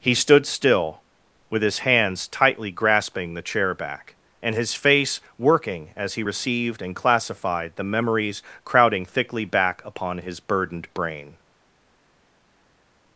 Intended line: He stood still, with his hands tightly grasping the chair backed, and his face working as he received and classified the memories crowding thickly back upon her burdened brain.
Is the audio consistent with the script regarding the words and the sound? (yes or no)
no